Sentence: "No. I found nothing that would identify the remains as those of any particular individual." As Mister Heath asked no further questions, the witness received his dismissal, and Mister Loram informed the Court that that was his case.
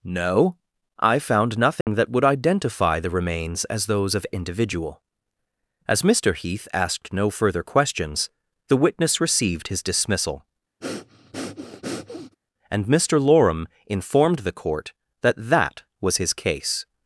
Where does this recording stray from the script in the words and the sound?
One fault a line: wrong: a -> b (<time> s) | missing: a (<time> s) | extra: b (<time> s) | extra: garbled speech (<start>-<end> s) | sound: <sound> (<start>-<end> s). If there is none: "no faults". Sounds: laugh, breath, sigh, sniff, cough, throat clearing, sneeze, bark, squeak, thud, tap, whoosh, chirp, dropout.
sound: dropout (1.8-1.9 s)
missing: any particular (4.2 s)
sound: breath (10.8-12.4 s)